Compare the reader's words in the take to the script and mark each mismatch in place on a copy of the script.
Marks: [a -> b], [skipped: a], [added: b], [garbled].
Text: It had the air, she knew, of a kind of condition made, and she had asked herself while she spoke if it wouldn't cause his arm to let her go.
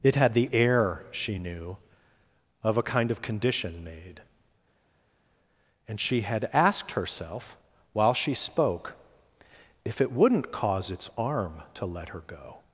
It had the air, she knew, of a kind of condition made, and she had asked herself while she spoke if it wouldn't cause [his -> its] arm to let her go.